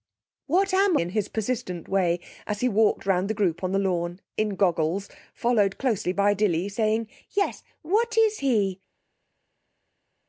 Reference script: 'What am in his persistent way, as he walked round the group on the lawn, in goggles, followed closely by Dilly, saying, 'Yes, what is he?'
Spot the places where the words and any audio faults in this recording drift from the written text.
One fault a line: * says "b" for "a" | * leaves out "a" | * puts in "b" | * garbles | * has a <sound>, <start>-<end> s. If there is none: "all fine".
all fine